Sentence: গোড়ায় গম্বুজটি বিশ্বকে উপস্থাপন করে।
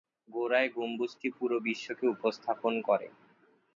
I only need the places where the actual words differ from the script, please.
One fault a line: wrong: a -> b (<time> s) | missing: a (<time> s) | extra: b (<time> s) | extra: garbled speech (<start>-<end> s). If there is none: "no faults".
extra: পুরো (1.4 s)